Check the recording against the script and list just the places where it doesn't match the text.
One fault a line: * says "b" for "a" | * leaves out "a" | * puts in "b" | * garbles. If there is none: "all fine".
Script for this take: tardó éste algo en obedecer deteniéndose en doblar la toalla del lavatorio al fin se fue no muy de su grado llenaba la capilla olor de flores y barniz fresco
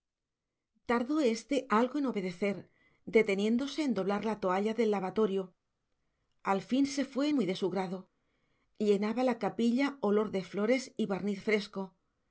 * leaves out "no"